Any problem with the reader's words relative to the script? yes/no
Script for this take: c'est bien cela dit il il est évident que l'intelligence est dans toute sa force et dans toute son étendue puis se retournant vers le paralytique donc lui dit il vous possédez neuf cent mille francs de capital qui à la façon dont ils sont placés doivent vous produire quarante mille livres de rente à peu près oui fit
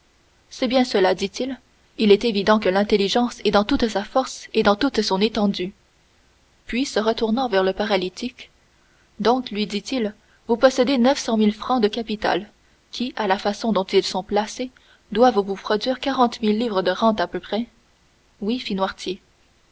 no